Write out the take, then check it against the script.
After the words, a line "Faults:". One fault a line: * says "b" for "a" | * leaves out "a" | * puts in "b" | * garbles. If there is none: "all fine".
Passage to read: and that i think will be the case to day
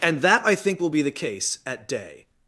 and that i think will be the case at day
Faults:
* says "at" for "to"